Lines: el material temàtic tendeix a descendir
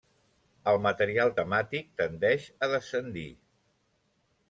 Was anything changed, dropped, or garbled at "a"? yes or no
no